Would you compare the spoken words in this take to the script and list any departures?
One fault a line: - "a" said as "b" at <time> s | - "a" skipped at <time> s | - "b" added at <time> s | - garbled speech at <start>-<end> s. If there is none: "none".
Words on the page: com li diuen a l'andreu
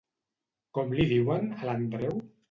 none